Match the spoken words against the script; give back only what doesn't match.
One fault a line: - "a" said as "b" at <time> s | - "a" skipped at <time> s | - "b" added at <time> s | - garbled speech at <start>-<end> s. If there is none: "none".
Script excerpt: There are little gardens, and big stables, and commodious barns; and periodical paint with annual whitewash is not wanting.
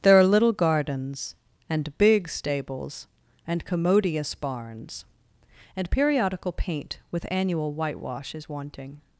- "not" skipped at 8.5 s